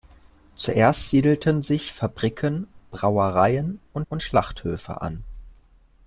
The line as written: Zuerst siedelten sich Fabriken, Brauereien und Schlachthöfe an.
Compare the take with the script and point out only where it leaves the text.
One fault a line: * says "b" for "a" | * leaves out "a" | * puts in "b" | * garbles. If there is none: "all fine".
* puts in "und"